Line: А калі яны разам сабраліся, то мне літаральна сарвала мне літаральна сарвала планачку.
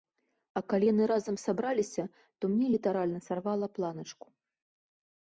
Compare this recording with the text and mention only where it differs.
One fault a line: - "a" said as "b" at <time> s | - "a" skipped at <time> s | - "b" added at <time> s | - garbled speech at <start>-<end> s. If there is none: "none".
- "мне літаральна сарвала" skipped at 3.7 s